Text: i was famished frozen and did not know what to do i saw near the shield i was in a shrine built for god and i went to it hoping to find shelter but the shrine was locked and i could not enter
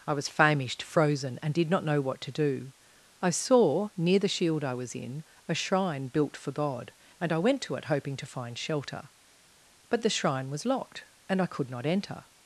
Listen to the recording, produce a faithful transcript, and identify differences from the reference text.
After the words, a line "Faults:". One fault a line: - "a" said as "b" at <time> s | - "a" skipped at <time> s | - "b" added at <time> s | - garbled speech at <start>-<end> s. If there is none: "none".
i was famished frozen and did not know what to do i saw near the shield i was in a shrine built for god and i went to it hoping to find shelter but the shrine was locked and i could not enter
Faults:
none